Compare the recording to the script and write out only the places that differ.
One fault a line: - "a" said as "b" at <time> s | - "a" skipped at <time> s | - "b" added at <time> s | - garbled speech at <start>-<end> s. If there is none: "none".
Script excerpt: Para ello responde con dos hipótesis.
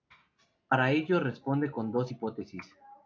none